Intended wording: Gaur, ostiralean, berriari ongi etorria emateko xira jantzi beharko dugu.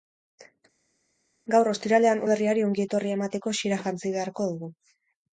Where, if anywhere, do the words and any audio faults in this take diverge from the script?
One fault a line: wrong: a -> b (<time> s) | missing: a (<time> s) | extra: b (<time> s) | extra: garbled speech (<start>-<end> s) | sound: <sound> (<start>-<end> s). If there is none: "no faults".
no faults